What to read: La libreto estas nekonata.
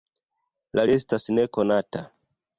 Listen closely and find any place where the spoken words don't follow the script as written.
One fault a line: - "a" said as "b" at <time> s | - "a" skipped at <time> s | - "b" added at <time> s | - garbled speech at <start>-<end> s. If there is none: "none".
- "libreto" skipped at 0.8 s